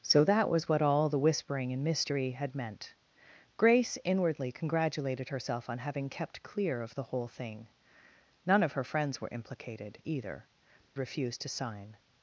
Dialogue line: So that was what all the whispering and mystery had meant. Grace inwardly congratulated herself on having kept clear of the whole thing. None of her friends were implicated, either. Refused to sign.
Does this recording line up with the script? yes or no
yes